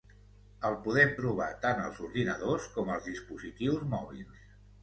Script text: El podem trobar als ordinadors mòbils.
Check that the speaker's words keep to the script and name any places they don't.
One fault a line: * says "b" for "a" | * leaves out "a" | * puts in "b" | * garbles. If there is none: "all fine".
* puts in "tant"
* puts in "com als dispositius"